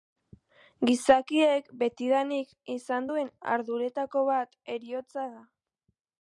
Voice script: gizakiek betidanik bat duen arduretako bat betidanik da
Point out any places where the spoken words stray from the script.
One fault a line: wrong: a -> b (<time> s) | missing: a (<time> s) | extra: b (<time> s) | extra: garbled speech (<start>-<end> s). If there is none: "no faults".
wrong: bat -> izan (2.8 s)
wrong: betidanik -> heriotza (4.7 s)